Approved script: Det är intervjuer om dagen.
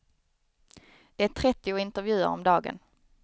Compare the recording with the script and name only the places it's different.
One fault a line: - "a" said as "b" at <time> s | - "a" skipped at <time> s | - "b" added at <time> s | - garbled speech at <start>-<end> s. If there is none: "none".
- "trettio" added at 1.3 s